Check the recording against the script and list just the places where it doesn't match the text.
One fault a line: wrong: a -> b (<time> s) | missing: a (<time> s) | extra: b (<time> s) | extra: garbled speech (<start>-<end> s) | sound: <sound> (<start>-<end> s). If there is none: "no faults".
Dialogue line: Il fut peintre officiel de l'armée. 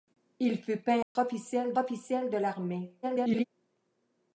sound: dropout (1.0-1.2 s)
extra: officiel (1.8 s)
extra: garbled speech (3.0-3.4 s)